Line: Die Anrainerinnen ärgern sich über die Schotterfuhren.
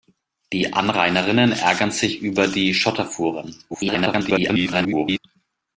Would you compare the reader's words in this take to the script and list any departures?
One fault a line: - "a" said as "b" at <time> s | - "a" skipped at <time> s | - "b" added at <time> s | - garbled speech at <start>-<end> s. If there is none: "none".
- garbled speech at 3.7-5.2 s